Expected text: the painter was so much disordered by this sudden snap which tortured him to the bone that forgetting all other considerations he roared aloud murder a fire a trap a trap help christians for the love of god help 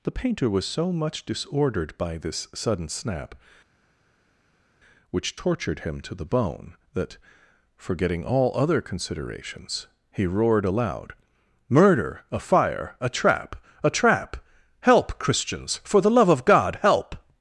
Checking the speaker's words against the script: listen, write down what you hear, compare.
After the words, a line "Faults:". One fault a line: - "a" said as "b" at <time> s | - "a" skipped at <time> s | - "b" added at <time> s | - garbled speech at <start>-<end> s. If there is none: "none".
the painter was so much disordered by this sudden snap which tortured him to the bone that forgetting all other considerations he roared aloud murder a fire a trap a trap help christians for the love of god help
Faults:
none